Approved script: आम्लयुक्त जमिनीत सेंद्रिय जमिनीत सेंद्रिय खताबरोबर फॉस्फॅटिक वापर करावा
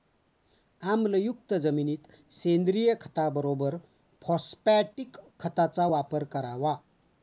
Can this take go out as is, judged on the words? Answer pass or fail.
fail